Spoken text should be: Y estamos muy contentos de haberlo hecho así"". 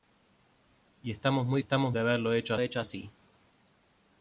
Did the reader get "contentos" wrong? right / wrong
wrong